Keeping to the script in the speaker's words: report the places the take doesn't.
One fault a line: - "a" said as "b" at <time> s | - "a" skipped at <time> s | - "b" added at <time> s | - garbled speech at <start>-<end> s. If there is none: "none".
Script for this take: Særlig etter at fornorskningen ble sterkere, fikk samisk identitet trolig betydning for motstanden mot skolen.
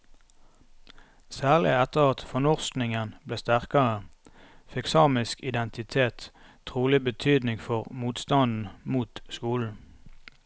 none